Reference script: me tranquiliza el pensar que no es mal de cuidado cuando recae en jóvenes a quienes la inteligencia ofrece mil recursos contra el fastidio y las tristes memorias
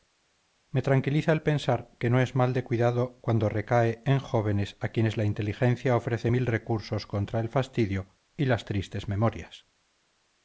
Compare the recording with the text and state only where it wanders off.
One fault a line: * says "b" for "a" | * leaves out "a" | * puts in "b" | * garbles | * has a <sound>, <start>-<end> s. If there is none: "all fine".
all fine